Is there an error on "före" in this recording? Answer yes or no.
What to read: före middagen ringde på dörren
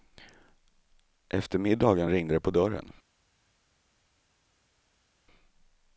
yes